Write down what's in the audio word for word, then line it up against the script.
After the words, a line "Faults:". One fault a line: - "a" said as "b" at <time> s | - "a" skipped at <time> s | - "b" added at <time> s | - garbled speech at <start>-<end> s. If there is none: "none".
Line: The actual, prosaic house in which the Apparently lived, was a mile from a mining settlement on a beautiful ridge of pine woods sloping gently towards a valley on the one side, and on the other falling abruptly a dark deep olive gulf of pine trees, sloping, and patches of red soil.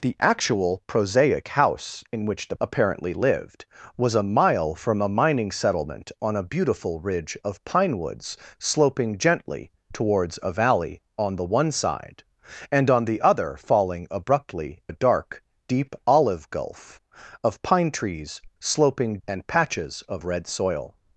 The actual, prosaic house in which the Apparently lived, was a mile from a mining settlement on a beautiful ridge of pine woods sloping gently towards a valley on the one side, and on the other falling abruptly a dark deep olive gulf of pine trees, sloping, and patches of red soil.
Faults:
none